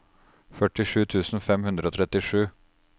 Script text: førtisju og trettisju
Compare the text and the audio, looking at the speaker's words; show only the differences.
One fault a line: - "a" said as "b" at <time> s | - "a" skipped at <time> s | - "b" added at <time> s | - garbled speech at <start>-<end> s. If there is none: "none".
- "tusen fem hundre" added at 1.1 s